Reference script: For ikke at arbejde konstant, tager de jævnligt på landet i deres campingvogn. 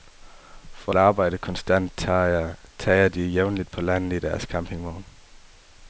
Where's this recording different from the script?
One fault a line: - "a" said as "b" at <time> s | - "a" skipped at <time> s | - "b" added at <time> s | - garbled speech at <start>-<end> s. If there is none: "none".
- "ikke" skipped at 0.9 s